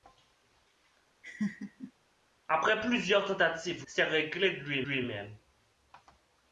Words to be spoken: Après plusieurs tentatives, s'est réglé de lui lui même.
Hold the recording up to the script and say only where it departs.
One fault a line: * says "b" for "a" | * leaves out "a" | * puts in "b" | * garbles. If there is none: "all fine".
all fine